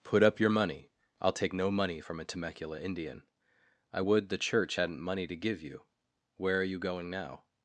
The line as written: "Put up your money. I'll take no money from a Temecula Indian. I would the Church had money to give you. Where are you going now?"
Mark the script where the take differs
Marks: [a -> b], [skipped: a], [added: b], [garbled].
"Put up your money. I'll take no money from a Temecula Indian. I would the Church [had -> hadn't] money to give you. Where are you going now?"